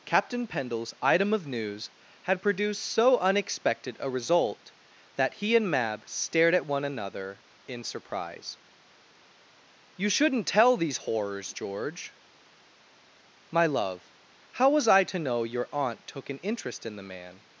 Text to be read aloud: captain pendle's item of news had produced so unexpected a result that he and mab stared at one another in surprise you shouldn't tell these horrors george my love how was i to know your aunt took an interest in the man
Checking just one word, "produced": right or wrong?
right